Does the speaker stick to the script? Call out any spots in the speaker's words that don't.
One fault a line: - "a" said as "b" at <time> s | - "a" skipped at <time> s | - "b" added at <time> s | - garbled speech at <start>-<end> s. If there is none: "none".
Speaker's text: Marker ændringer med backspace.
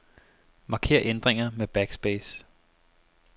none